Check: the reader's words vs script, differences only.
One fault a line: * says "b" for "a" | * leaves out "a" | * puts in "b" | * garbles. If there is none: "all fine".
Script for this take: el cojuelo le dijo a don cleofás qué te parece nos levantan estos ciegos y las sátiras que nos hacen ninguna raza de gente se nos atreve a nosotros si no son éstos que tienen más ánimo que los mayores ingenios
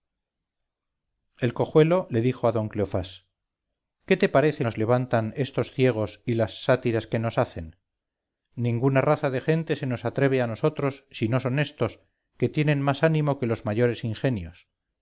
all fine